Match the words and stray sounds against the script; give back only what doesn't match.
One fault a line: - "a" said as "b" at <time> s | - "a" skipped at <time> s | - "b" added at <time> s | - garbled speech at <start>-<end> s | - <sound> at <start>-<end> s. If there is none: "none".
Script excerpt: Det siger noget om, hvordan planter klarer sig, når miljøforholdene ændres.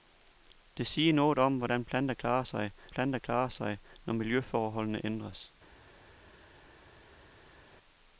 - "planter klarer sig" added at 2.9 s